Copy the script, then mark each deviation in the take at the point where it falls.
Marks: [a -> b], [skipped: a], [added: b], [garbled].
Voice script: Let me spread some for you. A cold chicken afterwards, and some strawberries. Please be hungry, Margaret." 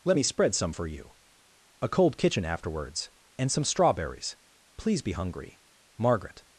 Let me spread some for you. A cold [chicken -> kitchen] afterwards, and some strawberries. Please be hungry, Margaret."